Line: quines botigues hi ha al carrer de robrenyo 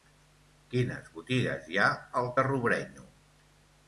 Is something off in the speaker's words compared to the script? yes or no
yes